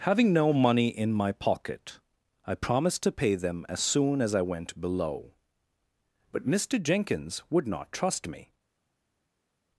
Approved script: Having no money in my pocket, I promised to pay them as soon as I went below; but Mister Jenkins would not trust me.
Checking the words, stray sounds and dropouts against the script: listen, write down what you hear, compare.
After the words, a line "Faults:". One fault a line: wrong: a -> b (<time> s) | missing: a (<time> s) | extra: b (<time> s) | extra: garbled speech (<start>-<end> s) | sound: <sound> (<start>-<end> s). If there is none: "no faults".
Having no money in my pocket, I promised to pay them as soon as I went below; but Mister Jenkins would not trust me.
Faults:
no faults